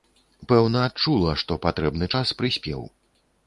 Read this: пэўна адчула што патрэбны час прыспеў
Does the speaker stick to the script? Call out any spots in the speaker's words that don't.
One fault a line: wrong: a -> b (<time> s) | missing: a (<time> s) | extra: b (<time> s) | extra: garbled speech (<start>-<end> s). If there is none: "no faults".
no faults